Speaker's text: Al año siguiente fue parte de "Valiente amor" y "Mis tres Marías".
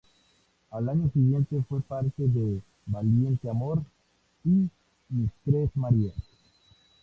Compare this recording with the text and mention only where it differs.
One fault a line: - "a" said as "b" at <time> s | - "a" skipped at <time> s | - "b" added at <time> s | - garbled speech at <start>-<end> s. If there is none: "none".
none